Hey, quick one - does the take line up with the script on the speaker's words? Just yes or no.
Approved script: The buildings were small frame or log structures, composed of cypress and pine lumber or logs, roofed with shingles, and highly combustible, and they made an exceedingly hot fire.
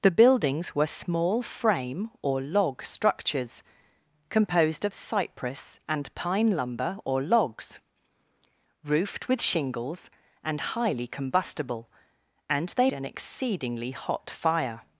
no